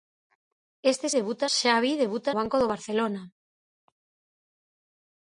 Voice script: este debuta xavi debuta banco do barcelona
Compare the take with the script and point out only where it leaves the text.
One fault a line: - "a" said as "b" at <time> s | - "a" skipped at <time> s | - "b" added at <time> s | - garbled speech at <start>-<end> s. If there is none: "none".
none